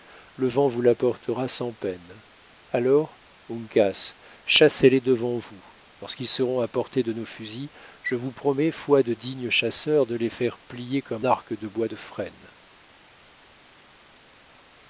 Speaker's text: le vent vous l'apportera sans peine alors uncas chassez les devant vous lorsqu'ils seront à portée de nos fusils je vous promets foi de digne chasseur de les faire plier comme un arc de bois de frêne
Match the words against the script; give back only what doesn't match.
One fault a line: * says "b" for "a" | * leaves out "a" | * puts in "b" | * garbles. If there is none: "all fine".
* leaves out "un"